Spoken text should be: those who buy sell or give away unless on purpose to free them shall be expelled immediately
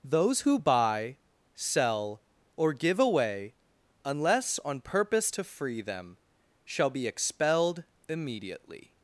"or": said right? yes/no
yes